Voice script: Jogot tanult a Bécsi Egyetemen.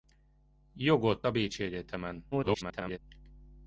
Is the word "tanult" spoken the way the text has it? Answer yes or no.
no